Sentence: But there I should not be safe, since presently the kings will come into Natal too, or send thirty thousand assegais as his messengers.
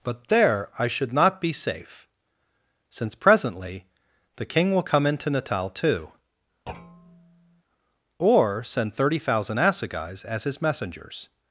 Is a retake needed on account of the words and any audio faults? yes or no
yes